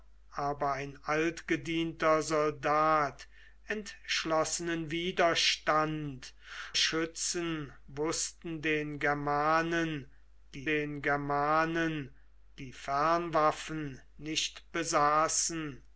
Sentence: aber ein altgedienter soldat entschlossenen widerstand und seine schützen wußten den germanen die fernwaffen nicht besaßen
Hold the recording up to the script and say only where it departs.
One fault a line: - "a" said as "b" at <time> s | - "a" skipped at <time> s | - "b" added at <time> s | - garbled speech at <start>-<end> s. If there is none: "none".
- "und seine schützen wußten" said as "schützen wußten den germanen die" at 6.8 s